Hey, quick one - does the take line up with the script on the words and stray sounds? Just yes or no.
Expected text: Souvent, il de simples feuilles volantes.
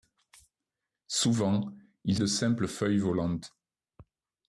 yes